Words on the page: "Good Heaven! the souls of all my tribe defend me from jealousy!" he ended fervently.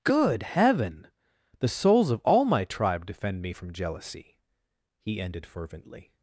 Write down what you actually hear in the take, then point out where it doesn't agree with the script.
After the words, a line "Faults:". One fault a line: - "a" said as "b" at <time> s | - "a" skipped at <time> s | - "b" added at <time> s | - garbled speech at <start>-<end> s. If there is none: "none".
"Good Heaven! the souls of all my tribe defend me from jealousy!" he ended fervently.
Faults:
none